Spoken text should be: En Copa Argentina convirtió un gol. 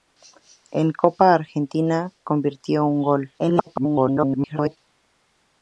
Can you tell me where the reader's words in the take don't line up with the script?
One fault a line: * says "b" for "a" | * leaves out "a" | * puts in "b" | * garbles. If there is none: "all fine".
* garbles